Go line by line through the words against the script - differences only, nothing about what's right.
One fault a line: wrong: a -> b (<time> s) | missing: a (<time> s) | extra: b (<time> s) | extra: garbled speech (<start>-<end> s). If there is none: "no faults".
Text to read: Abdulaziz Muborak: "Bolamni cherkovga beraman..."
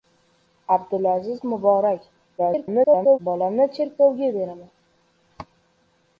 extra: garbled speech (2.4-3.2 s)